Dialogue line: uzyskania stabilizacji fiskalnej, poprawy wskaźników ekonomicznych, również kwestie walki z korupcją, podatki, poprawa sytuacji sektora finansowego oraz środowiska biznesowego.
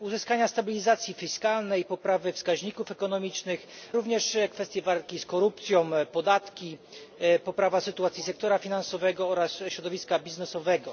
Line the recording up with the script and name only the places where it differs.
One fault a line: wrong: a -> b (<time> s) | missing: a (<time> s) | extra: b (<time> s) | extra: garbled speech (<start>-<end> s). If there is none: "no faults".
no faults